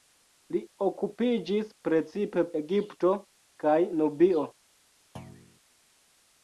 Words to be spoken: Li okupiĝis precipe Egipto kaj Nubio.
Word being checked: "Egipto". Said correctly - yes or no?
yes